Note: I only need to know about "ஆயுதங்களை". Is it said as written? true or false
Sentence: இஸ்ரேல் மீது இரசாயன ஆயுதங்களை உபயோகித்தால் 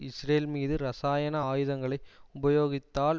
true